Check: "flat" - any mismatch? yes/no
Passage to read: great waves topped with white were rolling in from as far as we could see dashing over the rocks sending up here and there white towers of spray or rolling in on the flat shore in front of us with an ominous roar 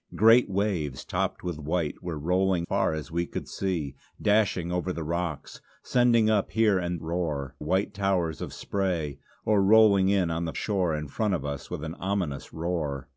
yes